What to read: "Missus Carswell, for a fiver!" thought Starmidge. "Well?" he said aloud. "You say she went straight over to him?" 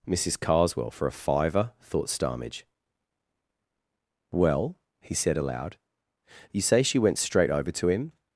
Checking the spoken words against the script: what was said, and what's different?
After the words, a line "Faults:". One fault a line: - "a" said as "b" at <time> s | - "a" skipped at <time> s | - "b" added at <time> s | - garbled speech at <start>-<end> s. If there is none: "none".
"Missus Carswell, for a fiver!" thought Starmidge. "Well?" he said aloud. "You say she went straight over to him?"
Faults:
none